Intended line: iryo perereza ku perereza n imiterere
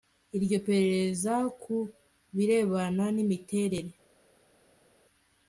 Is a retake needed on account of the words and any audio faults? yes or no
yes